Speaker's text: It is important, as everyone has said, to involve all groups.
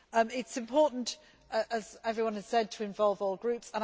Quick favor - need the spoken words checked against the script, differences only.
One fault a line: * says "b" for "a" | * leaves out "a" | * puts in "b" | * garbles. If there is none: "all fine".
all fine